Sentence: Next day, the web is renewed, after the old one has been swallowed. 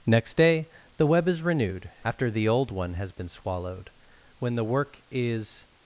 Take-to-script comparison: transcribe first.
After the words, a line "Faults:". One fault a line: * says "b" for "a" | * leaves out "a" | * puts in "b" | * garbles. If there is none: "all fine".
Next day, the web is renewed, after the old one has been swallowed. When the work is
Faults:
* puts in "When the work is"